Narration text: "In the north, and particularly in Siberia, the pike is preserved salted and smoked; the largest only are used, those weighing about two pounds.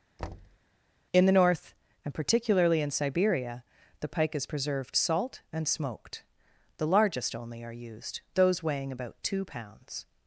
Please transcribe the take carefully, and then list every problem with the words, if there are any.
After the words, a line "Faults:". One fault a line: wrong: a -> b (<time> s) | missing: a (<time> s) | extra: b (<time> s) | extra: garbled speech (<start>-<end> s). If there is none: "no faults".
"In the north, and particularly in Siberia, the pike is preserved salt and smoked; the largest only are used, those weighing about two pounds.
Faults:
wrong: salted -> salt (4.9 s)